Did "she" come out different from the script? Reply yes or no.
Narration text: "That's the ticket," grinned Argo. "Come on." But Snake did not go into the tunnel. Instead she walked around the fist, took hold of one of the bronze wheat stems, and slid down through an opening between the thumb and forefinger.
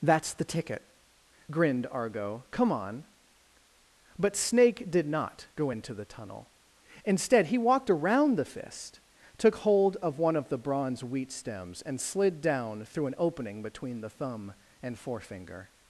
yes